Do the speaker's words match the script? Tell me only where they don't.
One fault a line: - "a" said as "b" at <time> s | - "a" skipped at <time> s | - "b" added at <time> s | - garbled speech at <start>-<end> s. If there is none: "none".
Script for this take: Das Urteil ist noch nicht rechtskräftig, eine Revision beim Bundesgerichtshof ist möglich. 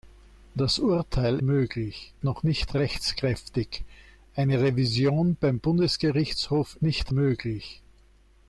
- "ist" said as "möglich" at 1.4 s
- "ist" said as "nicht" at 6.8 s